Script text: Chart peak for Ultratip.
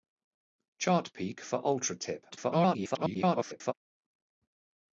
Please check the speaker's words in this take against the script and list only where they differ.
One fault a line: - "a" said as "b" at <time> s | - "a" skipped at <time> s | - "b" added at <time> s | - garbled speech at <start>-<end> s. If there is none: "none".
- garbled speech at 2.3-3.7 s